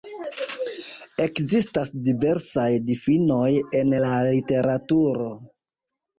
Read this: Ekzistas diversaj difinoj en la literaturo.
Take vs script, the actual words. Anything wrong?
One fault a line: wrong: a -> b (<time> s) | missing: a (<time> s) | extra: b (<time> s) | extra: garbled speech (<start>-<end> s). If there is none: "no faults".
no faults